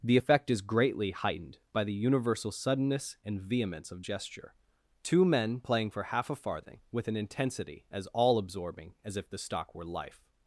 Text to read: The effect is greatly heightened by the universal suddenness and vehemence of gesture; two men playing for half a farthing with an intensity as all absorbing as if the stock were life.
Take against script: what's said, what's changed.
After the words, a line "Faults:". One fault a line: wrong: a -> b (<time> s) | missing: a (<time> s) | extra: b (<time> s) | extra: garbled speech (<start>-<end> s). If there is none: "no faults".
The effect is greatly heightened by the universal suddenness and vehemence of gesture; two men playing for half a farthing with an intensity as all absorbing as if the stock were life.
Faults:
no faults